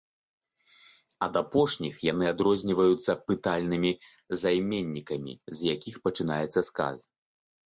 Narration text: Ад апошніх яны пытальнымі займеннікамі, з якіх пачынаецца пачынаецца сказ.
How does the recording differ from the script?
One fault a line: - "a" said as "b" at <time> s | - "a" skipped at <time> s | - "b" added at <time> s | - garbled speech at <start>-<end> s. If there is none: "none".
- "адрозніваюцца" added at 2.3 s
- "пачынаецца" skipped at 6.6 s